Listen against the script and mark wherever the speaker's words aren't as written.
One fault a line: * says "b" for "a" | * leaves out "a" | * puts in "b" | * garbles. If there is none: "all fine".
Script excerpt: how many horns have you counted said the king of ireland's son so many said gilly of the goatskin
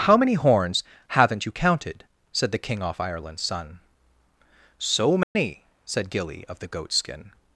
* says "haven't" for "have"
* says "off" for "of"